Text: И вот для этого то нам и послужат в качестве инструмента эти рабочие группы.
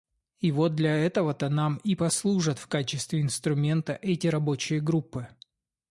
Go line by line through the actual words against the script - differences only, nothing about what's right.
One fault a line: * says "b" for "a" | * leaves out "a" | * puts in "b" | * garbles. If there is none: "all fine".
all fine